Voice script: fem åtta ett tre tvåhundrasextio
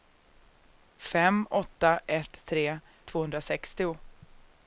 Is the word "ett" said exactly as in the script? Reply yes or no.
yes